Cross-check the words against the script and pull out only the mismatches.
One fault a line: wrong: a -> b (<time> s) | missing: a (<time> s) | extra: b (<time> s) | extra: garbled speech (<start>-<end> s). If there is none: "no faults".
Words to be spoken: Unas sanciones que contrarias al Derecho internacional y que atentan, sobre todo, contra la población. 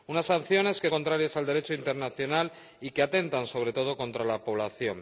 no faults